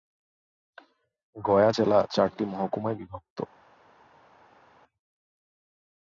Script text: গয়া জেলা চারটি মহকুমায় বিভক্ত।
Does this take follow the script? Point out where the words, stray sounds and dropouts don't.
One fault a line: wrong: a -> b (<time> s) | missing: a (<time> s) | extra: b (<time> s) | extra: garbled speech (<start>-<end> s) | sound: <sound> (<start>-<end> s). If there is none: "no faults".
no faults